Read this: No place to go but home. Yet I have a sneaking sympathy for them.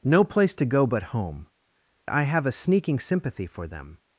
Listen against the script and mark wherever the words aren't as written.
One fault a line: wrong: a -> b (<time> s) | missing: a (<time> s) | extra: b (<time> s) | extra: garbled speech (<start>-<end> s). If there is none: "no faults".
missing: Yet (1.4 s)